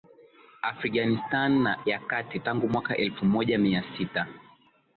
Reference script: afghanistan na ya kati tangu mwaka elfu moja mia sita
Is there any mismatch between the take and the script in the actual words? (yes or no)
no